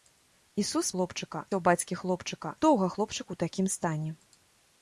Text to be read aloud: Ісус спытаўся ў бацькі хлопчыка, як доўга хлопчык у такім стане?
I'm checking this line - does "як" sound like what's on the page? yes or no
no